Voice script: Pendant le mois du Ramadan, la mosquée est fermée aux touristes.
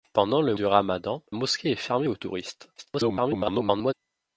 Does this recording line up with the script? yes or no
no